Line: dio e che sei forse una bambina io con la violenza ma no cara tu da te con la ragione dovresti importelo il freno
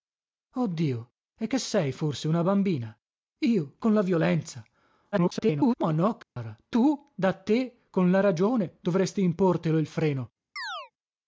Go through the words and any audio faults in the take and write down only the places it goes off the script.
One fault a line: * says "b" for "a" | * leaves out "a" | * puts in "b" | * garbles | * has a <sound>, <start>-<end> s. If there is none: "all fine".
* garbles
* has a dropout, 6.2-6.4 s
* has a chirp, 10.6-10.9 s